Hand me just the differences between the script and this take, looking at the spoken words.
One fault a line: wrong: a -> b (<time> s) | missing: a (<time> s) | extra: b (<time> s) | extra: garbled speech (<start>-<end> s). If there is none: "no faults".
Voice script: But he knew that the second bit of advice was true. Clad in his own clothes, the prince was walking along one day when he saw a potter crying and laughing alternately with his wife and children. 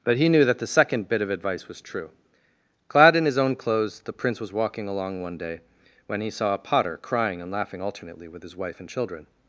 no faults